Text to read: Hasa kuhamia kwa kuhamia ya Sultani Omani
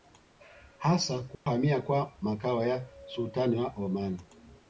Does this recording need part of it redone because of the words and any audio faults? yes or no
yes